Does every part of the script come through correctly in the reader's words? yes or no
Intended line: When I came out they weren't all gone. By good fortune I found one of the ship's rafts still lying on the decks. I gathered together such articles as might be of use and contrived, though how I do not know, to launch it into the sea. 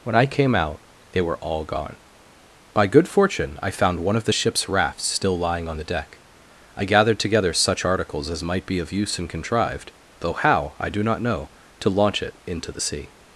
no